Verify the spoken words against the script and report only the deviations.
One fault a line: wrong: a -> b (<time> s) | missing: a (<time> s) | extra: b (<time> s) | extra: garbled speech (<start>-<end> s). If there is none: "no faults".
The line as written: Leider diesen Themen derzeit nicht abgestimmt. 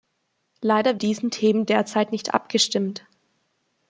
no faults